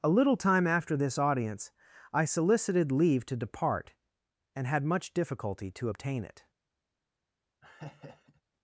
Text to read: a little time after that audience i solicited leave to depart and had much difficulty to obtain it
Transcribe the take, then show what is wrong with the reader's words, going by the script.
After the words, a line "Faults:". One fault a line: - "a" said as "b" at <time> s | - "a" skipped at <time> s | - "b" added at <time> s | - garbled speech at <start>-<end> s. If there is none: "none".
a little time after this audience i solicited leave to depart and had much difficulty to obtain it
Faults:
- "that" said as "this" at 1.0 s